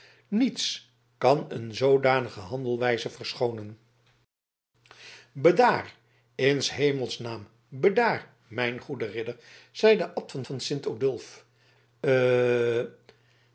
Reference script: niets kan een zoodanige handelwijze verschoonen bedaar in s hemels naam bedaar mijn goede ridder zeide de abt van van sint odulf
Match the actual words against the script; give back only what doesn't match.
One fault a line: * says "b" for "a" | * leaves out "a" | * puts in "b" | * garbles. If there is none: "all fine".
all fine